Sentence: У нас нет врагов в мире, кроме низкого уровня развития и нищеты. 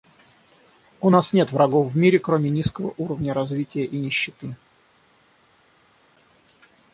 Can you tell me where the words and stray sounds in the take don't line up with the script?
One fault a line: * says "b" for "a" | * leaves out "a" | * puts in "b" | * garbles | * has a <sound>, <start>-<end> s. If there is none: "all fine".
all fine